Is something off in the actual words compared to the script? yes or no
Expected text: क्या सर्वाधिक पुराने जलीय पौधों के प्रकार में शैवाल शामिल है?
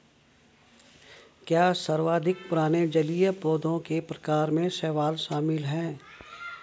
no